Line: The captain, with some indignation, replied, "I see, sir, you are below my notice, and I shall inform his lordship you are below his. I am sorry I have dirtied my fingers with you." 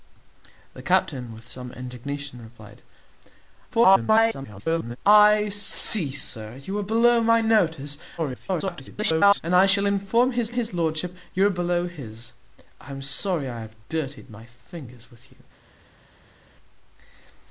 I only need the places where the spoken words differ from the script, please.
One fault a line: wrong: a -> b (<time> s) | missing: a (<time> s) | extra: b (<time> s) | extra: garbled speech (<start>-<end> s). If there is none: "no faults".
extra: garbled speech (3.7-5.0 s)
extra: garbled speech (8.2-9.4 s)
extra: his (10.5 s)